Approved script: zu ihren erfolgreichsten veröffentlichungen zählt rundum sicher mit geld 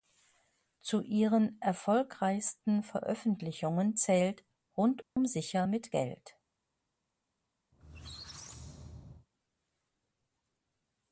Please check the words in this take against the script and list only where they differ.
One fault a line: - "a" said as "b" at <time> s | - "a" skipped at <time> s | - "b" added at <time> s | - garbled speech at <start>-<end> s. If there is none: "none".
none